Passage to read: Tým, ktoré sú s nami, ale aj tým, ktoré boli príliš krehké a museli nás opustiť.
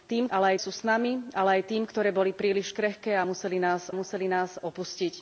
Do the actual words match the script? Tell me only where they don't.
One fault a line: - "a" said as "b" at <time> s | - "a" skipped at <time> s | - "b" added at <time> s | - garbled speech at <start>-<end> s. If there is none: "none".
- "ktoré" said as "ale" at 0.3 s
- "museli nás" added at 3.9 s